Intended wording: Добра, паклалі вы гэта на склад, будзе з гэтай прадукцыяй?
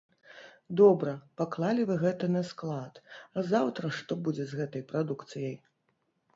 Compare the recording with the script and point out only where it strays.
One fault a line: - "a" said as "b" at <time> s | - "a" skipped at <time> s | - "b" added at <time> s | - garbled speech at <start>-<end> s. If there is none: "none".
- "а заўтра што" added at 3.4 s